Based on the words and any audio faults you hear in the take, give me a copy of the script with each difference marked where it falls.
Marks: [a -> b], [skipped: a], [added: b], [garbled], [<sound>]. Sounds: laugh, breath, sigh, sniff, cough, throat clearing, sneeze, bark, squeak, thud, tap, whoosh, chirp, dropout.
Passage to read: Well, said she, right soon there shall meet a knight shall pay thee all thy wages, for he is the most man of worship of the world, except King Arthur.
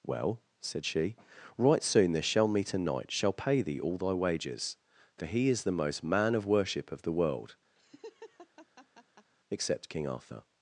Well, said she, right soon there shall meet a knight shall pay thee all thy wages, for he is the most man of worship of the world, [laugh] except King Arthur.